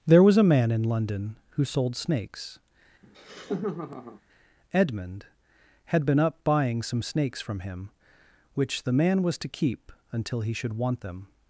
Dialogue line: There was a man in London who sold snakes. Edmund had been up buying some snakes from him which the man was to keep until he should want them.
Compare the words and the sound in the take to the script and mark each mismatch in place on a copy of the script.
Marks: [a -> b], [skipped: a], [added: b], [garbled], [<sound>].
There was a man in London who sold snakes. [laugh] Edmund had been up buying some snakes from him which the man was to keep until he should want them.